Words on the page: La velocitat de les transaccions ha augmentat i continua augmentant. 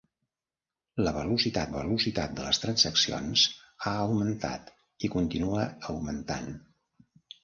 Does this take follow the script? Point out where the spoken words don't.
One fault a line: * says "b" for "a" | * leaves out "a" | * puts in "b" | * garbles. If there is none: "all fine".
* puts in "velocitat"